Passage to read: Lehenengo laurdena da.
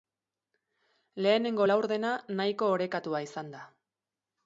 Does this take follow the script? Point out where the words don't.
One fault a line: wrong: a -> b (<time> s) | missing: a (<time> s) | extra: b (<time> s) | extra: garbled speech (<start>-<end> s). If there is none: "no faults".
extra: nahiko orekatua izan (2.4 s)